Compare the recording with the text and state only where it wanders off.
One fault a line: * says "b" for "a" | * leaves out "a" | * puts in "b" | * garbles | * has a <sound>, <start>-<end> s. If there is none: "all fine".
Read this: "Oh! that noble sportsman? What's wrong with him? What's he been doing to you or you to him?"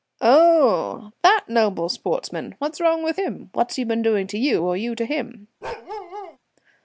* has a bark, 5.6-6.4 s